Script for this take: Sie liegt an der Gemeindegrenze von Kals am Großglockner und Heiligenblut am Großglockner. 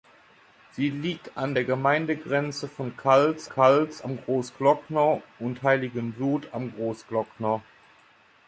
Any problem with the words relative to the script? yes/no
yes